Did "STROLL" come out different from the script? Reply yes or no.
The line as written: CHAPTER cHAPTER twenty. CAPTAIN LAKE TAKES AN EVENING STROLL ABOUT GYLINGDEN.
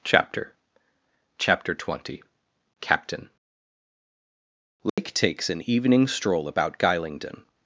no